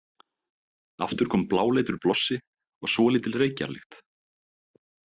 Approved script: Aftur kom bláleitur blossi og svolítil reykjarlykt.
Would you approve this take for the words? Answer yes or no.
yes